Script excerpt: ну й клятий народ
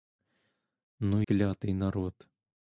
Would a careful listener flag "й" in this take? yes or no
yes